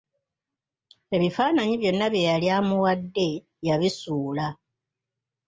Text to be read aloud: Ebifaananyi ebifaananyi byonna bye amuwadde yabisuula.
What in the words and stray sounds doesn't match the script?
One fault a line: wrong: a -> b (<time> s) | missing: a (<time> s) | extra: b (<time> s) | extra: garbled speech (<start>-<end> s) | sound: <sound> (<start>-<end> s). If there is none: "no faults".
missing: ebifaananyi (1.8 s)
extra: yali (2.3 s)